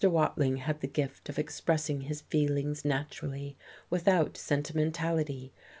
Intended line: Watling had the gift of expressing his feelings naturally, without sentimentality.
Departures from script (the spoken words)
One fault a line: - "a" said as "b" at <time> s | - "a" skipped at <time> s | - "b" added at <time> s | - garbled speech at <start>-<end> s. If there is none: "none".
none